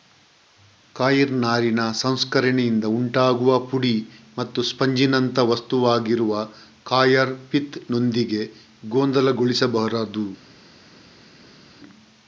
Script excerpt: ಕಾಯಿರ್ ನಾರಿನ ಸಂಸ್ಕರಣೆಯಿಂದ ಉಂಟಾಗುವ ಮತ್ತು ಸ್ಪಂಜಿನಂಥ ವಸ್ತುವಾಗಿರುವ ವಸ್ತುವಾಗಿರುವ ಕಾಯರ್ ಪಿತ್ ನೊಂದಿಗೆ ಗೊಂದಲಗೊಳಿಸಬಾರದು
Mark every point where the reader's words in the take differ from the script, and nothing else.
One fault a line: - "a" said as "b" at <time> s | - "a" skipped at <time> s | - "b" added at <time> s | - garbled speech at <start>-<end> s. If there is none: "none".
- "ಪುಡಿ" added at 3.7 s
- "ವಸ್ತುವಾಗಿರುವ" skipped at 6.3 s